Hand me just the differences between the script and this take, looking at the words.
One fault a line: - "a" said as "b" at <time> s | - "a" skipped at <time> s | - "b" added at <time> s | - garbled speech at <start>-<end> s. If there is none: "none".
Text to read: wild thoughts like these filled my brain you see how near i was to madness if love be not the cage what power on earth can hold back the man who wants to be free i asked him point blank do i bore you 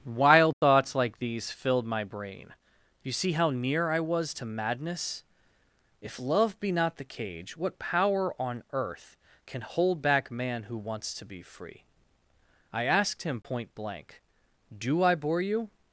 - "the" skipped at 10.3 s